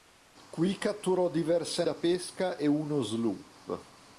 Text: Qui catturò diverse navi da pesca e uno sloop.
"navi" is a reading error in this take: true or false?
true